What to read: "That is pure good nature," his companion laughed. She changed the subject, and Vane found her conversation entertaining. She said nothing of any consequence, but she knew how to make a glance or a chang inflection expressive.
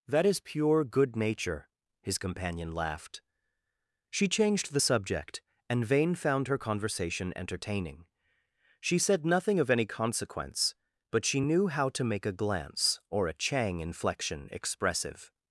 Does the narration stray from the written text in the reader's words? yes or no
no